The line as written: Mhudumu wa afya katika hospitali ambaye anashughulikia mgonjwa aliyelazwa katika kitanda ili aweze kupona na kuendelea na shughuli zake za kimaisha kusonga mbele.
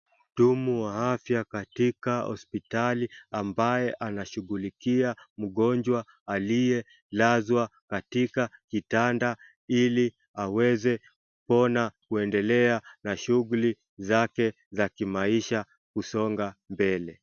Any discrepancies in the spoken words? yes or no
yes